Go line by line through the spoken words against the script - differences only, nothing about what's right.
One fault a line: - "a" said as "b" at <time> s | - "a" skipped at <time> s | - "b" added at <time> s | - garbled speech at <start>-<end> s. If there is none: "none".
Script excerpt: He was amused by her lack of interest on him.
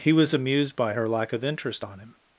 none